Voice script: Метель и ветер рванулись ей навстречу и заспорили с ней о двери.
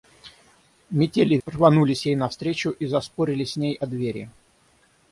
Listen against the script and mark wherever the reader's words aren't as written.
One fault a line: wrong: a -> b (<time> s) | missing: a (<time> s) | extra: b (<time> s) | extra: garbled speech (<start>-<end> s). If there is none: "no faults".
missing: ветер (1.4 s)